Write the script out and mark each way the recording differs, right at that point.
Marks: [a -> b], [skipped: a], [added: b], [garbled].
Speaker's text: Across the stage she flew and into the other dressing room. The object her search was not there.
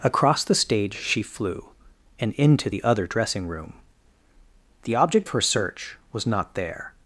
Across the stage she flew and into the other dressing room. The object her search was not there.